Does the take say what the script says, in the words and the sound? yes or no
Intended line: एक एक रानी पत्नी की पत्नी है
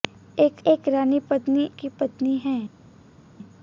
yes